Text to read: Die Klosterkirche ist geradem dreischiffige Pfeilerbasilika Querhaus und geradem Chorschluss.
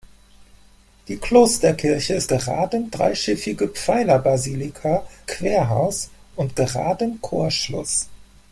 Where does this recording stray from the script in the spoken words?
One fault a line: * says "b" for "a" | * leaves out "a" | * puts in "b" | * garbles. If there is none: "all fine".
all fine